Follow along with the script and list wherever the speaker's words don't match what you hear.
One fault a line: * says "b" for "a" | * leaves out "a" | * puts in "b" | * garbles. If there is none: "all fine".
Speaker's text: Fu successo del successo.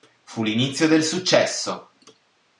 * says "l'inizio" for "successo"